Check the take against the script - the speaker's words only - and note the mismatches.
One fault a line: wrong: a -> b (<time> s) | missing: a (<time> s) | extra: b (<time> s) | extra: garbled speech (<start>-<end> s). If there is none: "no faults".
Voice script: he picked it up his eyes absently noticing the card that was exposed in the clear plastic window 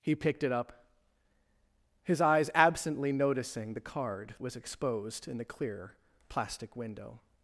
missing: that (4.3 s)